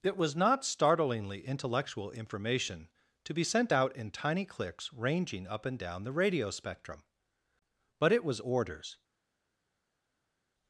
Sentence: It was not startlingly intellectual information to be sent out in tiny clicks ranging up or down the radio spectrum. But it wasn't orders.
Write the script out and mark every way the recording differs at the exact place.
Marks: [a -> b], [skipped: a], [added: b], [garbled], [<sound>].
It was not startlingly intellectual information to be sent out in tiny clicks ranging up [or -> and] down the radio spectrum. But it [wasn't -> was] orders.